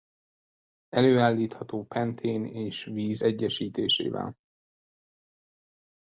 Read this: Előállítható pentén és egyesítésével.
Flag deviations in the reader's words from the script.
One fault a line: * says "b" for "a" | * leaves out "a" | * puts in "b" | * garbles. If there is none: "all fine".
* puts in "víz"